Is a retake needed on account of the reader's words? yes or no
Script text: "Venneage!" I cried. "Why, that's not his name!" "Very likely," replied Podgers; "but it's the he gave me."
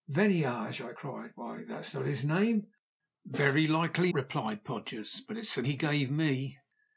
no